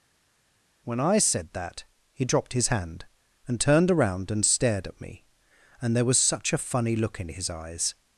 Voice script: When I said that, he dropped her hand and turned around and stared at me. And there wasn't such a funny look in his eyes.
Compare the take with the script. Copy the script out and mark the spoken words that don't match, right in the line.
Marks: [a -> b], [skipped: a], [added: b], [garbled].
When I said that, he dropped [her -> his] hand and turned around and stared at me. And there [wasn't -> was] such a funny look in his eyes.